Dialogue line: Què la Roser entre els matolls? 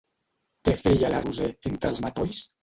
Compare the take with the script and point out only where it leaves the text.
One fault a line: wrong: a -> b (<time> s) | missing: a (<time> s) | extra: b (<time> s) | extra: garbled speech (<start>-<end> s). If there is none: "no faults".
extra: feia (0.8 s)